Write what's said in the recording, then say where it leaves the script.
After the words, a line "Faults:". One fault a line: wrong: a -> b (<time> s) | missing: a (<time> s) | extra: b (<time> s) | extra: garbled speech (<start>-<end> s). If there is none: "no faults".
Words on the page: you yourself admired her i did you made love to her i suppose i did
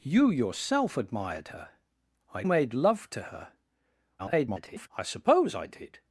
you yourself admired her i made love to her [garbled] i suppose i did
Faults:
missing: did you (2.4 s)
extra: garbled speech (4.2-4.9 s)